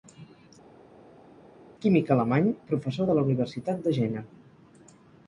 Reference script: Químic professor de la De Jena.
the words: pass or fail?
fail